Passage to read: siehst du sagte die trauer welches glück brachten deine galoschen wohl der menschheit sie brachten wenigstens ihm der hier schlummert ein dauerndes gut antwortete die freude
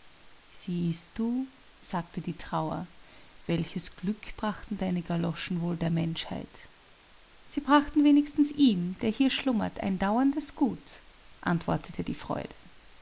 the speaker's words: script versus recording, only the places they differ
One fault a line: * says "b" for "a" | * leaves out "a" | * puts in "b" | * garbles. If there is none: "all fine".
all fine